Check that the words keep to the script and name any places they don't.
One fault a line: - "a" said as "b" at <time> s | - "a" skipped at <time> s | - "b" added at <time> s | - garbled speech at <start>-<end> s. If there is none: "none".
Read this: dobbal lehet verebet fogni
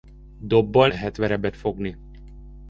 none